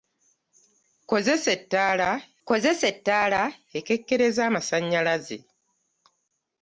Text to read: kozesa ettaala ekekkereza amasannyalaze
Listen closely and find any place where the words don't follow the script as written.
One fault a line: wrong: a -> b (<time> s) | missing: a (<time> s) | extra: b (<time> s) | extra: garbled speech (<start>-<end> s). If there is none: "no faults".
extra: kozesa ettaala (2.5 s)